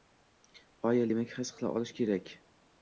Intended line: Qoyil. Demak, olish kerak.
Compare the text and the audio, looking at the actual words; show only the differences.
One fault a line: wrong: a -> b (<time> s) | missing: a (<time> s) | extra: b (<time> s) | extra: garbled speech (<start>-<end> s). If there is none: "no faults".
extra: his qila (1.4 s)